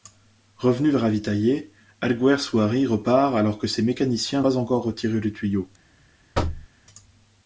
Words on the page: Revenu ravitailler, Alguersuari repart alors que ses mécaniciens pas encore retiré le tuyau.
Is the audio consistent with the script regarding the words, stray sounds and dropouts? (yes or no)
no